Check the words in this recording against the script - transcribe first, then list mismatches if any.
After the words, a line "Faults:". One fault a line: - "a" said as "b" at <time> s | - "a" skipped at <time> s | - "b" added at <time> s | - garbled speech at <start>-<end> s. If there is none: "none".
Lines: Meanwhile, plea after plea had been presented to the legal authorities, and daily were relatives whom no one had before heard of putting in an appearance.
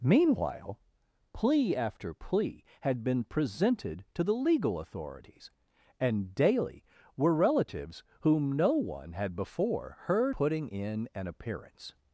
Meanwhile, plea after plea had been presented to the legal authorities, and daily were relatives whom no one had before heard putting in an appearance.
Faults:
- "of" skipped at 10.3 s